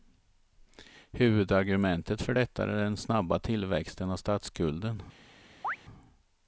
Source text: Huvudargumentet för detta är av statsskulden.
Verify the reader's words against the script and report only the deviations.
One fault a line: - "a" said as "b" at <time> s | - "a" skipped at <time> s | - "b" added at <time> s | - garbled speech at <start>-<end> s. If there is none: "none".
- "den snabba tillväxten" added at 2.7 s